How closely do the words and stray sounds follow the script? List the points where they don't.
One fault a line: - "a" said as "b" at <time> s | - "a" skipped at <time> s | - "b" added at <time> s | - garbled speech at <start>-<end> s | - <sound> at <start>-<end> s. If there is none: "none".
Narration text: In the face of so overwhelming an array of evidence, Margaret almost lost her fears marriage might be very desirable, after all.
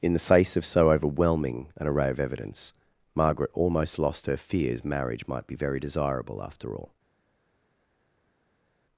none